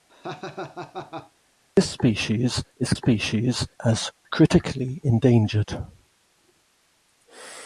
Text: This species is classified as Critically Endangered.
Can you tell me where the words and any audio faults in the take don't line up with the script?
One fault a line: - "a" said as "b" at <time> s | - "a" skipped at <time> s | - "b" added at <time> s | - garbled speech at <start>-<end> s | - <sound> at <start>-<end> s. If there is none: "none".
- laugh at 0.1-1.3 s
- "classified" said as "species" at 2.9 s